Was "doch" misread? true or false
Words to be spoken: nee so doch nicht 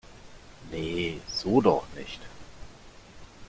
false